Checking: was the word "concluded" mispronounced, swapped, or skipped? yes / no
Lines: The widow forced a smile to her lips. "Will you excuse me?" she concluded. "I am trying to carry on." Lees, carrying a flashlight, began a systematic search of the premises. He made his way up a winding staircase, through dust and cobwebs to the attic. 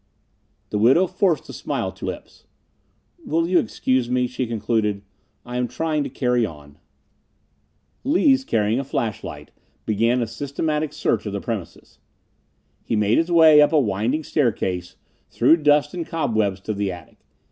no